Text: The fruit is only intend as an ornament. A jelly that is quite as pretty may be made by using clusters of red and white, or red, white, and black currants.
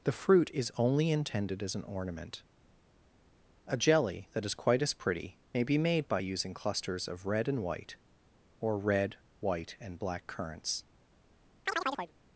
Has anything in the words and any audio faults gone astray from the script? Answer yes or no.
yes